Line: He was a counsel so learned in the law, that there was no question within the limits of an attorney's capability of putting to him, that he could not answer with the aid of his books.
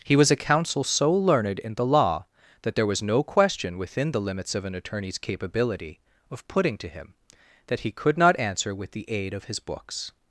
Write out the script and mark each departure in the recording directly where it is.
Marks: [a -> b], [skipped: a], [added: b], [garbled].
He was a counsel so learned in the law, that there was no question within the limits of an attorney's capability of putting to him, that he could not answer with the aid of his books.